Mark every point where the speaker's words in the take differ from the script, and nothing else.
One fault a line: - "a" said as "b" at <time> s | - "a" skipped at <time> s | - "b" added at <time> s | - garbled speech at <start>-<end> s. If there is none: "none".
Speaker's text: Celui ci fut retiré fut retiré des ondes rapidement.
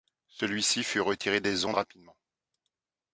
- "fut retiré" skipped at 1.4 s